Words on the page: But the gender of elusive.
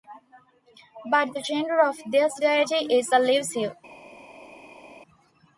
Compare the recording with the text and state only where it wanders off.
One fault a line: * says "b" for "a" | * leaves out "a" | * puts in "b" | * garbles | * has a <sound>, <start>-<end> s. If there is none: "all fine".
* puts in "this deity is"